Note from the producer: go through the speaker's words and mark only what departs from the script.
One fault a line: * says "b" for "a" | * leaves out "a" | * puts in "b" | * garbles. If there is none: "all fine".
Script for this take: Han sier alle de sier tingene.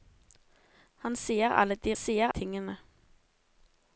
all fine